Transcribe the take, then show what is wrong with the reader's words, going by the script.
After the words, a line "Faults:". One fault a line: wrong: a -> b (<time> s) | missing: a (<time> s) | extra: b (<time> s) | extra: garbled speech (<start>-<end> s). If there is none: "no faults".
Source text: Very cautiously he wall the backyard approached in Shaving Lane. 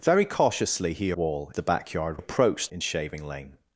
Very cautiously he wall the backyard approached in Shaving Lane.
Faults:
no faults